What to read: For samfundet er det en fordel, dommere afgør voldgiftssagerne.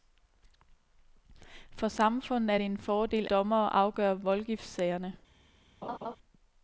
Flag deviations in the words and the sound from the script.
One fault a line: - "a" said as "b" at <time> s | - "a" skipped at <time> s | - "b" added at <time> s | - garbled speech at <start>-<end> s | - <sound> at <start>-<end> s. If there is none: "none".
- laugh at 5.8-6.2 s